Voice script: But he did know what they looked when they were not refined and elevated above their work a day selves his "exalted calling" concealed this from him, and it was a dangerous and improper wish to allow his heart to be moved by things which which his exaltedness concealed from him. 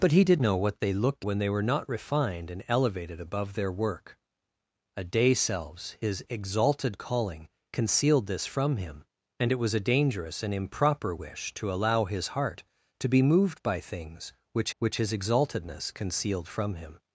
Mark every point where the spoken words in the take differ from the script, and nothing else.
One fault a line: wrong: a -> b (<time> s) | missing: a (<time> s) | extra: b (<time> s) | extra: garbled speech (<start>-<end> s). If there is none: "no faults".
no faults